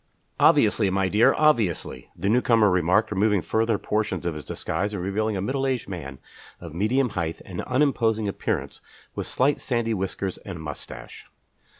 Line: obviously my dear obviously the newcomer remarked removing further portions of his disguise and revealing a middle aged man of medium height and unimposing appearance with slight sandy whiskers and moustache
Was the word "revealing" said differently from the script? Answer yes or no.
no